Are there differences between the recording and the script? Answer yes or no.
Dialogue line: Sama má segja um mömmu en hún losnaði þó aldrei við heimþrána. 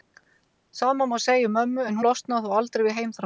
yes